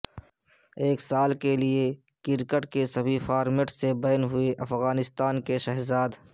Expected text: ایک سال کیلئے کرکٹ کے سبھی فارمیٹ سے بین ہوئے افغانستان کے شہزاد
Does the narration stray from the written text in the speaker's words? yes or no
no